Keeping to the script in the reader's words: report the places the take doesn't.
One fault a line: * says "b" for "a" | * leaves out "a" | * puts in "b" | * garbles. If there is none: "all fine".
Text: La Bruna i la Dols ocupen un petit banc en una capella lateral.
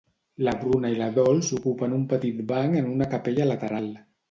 all fine